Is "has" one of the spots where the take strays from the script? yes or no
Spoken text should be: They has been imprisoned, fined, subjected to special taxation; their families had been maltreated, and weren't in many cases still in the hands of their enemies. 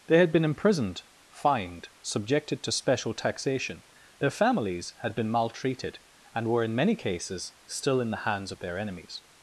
yes